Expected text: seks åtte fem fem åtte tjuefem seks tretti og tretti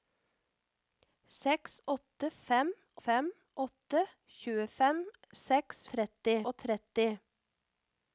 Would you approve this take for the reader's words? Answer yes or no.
yes